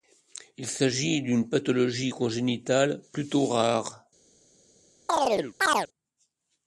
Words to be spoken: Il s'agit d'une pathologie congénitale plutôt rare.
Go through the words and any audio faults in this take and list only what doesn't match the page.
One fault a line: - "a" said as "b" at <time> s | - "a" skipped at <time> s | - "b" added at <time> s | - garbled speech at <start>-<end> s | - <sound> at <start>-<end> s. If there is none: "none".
- chirp at 5.1-5.9 s